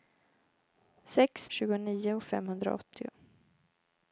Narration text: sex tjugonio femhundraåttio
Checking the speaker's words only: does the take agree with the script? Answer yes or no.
yes